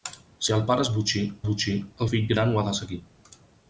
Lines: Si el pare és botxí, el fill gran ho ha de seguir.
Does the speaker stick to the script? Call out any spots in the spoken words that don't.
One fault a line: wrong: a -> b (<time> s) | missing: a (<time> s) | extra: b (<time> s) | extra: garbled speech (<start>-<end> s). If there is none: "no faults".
extra: botxí (1.5 s)